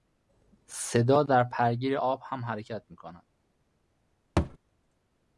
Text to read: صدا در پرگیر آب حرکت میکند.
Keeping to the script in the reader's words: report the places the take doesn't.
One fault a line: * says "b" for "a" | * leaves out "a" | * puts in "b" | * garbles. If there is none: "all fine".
* puts in "هم"